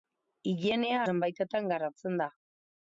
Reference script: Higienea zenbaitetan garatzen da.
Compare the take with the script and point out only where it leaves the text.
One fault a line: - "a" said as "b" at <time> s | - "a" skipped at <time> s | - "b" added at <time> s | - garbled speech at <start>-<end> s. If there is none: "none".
none